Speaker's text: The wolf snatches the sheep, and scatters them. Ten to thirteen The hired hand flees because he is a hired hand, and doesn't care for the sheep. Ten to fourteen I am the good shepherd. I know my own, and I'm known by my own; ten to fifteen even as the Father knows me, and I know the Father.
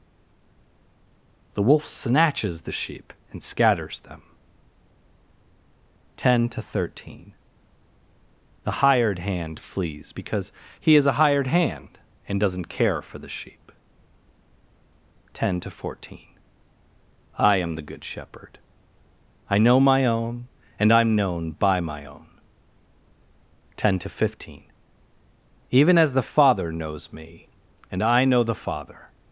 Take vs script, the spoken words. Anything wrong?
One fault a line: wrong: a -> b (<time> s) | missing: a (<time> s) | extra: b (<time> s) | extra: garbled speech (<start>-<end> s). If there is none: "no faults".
no faults